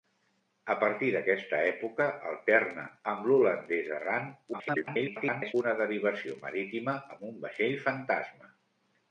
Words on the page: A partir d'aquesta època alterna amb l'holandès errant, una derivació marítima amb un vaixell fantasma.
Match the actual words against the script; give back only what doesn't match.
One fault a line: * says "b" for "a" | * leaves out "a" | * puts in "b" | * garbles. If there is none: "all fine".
* garbles